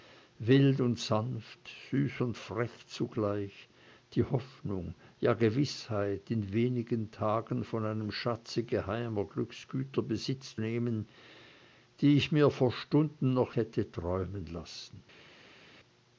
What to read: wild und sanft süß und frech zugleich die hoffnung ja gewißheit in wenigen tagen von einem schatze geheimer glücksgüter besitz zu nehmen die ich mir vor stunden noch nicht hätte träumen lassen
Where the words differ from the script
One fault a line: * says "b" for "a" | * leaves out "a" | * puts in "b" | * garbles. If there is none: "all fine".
* leaves out "zu"
* leaves out "nicht"